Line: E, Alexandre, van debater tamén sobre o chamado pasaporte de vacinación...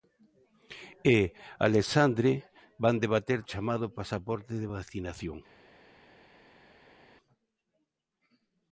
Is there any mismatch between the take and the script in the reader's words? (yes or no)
yes